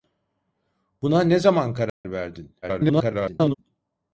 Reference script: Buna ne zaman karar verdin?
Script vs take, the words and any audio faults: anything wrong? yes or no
yes